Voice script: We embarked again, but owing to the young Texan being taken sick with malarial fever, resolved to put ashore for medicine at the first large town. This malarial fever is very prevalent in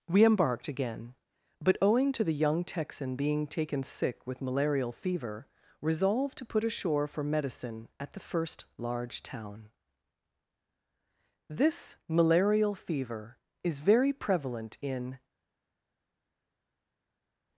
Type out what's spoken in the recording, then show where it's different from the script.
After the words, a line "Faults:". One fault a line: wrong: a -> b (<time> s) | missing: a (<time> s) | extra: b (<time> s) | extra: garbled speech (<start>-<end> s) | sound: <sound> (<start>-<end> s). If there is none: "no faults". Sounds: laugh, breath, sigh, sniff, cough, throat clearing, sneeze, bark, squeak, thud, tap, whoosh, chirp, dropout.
We embarked again, but owing to the young Texan being taken sick with malarial fever, resolved to put ashore for medicine at the first large town. This malarial fever is very prevalent in
Faults:
no faults